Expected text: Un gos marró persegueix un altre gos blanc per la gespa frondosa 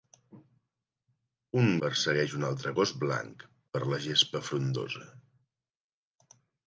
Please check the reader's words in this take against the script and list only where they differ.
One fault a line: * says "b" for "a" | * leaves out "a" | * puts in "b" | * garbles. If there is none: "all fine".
* leaves out "gos marró"